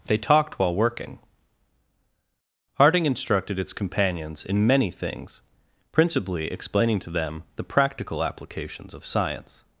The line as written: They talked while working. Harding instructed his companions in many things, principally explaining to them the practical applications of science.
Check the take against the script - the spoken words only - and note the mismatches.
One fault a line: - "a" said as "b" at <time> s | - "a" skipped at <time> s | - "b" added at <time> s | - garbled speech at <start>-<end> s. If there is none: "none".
- "his" said as "its" at 3.6 s